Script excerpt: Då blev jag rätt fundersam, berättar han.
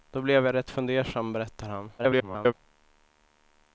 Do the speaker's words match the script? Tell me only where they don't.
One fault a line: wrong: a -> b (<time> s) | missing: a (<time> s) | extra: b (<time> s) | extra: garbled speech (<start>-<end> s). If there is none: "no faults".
extra: garbled speech (2.0-2.5 s)